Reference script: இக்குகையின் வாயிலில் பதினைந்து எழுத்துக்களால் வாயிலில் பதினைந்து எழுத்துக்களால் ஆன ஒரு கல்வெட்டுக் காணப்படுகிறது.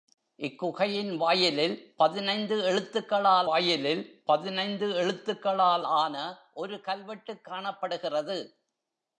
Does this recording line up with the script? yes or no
yes